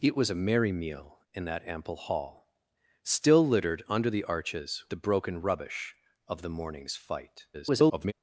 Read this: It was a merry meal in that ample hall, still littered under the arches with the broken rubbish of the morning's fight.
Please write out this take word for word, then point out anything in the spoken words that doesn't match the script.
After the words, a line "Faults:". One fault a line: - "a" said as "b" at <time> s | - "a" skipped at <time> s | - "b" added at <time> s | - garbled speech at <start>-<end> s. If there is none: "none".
It was a merry meal in that ample hall, still littered under the arches the broken rubbish of the morning's fight. [garbled]
Faults:
- "with" skipped at 4.8 s
- garbled speech at 7.5-8.1 s